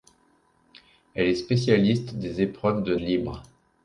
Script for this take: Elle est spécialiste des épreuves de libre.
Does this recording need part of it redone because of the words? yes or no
no